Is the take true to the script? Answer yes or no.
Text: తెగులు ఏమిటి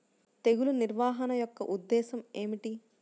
no